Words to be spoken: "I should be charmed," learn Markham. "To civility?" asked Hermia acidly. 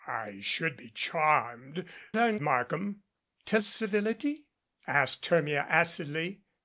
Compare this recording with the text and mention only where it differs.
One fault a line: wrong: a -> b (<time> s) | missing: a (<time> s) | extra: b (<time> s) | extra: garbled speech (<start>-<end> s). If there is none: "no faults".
no faults